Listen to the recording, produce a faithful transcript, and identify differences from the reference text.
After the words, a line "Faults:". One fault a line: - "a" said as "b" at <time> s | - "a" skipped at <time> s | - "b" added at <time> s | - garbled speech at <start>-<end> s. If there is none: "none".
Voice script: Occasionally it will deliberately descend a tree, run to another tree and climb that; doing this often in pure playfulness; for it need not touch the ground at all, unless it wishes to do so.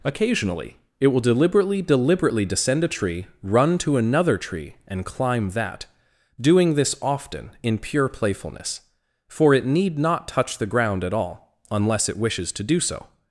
Occasionally it will deliberately deliberately descend a tree, run to another tree and climb that; doing this often in pure playfulness; for it need not touch the ground at all, unless it wishes to do so.
Faults:
- "deliberately" added at 1.8 s